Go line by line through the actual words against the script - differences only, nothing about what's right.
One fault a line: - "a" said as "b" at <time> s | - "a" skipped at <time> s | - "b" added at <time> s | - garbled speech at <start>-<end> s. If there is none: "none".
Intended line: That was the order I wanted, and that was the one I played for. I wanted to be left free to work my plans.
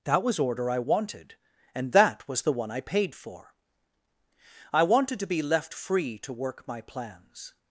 - "the" skipped at 0.4 s
- "played" said as "paid" at 2.8 s